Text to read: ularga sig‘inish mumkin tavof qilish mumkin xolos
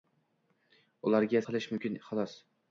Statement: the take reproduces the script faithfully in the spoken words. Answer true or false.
false